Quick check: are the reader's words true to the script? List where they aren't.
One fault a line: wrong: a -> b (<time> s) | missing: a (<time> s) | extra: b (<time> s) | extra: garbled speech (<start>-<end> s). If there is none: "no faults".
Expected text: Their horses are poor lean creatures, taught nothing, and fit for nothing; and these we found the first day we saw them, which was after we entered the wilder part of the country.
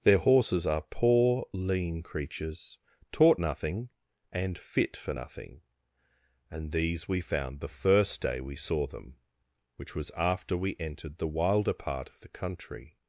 no faults